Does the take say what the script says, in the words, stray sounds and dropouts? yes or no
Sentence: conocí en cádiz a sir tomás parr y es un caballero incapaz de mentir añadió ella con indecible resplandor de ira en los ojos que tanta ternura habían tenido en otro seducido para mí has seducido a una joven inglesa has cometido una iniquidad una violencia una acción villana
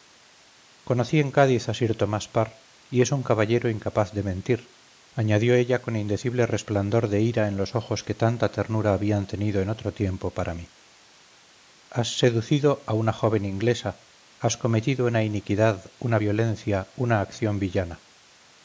no